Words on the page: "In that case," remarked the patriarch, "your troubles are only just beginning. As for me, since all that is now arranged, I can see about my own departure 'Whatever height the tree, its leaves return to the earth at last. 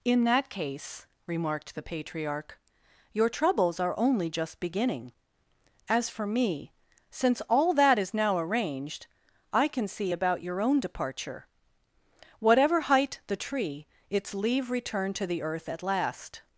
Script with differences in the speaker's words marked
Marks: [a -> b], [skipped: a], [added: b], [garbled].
"In that case," remarked the patriarch, "your troubles are only just beginning. As for me, since all that is now arranged, I can see about [my -> your] own departure 'Whatever height the tree, its [leaves -> leave] return to the earth at last.